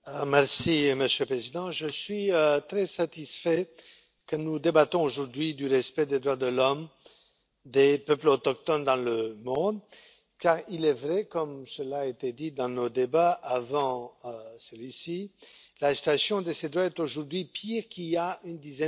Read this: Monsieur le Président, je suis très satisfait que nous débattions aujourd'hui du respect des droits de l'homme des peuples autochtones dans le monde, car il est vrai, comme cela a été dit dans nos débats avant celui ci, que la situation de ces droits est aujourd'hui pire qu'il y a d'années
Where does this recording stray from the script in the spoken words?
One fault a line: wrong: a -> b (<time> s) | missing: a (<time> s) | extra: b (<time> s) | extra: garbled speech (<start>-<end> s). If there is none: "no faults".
extra: une dizaine (18.4 s)